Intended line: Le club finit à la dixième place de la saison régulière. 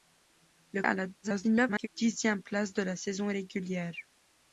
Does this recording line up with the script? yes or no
no